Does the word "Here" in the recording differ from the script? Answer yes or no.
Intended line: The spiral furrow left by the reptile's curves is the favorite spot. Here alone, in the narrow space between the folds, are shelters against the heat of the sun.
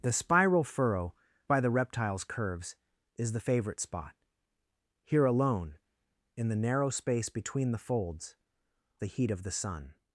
no